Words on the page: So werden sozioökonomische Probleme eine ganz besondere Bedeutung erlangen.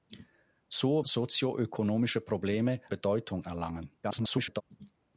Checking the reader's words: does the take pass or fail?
fail